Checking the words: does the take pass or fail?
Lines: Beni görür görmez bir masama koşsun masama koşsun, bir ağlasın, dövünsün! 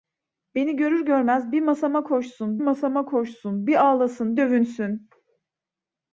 pass